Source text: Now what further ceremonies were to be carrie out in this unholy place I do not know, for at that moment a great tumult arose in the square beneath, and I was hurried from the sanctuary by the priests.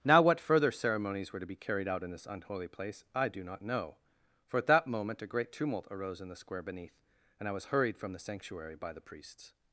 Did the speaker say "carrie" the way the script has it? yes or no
no